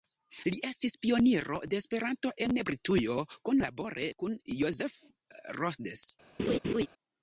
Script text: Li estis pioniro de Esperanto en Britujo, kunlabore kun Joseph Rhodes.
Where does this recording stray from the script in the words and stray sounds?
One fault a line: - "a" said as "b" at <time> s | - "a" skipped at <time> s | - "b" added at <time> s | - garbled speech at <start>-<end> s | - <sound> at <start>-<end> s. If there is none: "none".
- laugh at 6.4-6.9 s